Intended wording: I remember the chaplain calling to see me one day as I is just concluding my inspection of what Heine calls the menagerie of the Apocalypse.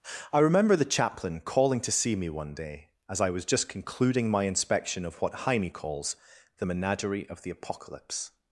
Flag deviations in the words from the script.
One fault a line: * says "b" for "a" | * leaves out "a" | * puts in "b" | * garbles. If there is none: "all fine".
* says "was" for "is"